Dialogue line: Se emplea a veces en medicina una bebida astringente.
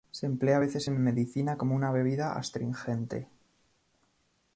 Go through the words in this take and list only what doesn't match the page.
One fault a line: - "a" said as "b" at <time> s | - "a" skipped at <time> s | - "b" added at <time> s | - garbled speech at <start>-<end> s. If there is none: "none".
- "como" added at 1.6 s